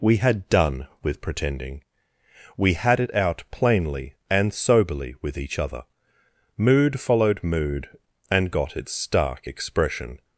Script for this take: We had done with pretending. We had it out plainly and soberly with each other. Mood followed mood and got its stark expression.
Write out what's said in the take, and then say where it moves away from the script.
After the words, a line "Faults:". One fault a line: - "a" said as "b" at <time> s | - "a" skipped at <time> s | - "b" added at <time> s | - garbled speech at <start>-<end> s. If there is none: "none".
We had done with pretending. We had it out plainly and soberly with each other. Mood followed mood and got its stark expression.
Faults:
none